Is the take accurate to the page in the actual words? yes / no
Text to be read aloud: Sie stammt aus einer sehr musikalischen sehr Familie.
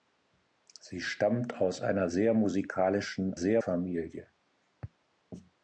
yes